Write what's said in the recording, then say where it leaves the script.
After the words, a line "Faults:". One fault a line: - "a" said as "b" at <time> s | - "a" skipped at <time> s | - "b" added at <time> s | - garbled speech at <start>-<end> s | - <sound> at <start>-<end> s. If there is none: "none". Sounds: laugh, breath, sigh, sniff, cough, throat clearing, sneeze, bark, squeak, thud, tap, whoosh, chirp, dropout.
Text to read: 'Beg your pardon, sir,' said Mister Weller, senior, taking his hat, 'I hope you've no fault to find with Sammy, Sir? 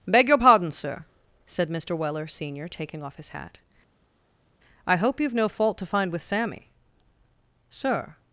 'Beg your pardon, sir,' said Mister Weller, senior, taking off his hat, 'I hope you've no fault to find with Sammy, Sir?
Faults:
- "off" added at 3.0 s